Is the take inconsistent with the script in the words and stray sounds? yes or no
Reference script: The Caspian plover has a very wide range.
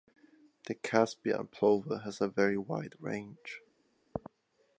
no